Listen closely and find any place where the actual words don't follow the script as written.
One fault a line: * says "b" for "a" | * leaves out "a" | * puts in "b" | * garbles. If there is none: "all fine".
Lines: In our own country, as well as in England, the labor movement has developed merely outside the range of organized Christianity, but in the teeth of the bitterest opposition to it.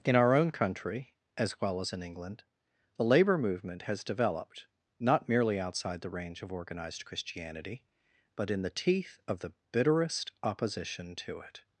* puts in "not"